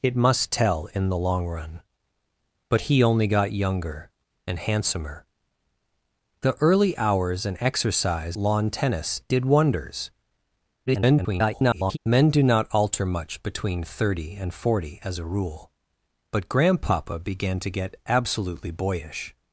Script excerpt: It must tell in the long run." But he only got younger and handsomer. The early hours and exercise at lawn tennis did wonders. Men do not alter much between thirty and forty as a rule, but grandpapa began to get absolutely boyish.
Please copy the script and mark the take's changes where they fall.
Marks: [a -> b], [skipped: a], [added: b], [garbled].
It must tell in the long run." But he only got younger and handsomer. The early hours and exercise [skipped: at] lawn tennis did wonders. [garbled] Men do not alter much between thirty and forty as a rule, but grandpapa began to get absolutely boyish.